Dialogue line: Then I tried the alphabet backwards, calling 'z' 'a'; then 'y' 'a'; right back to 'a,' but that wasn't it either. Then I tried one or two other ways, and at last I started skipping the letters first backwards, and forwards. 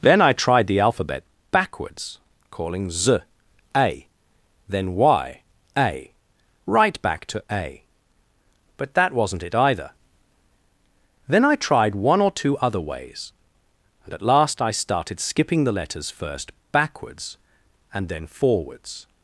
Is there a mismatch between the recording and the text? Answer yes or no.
yes